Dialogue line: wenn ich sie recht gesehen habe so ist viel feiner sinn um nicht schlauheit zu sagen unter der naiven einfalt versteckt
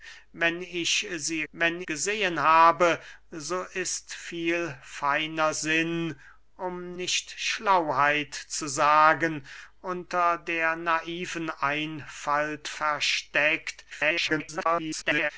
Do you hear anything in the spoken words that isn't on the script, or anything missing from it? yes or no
yes